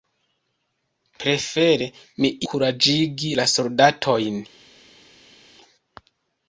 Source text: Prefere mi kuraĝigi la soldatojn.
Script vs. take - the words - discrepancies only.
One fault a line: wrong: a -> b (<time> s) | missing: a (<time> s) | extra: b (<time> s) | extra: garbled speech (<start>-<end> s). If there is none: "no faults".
no faults